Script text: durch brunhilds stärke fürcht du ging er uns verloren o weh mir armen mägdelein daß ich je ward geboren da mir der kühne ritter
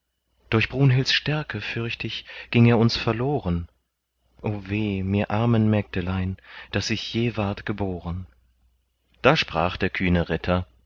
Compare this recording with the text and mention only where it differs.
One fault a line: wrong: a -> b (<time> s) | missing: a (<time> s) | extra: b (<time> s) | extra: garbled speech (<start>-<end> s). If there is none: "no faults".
wrong: du -> ich (2.1 s)
wrong: mir -> sprach (9.4 s)